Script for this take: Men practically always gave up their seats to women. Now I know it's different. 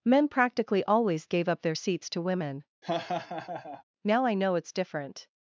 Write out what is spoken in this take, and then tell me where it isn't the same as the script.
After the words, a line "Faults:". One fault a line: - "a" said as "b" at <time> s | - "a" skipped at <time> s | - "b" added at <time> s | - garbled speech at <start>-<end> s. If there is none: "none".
Men practically always gave up their seats to women. Now I know it's different.
Faults:
none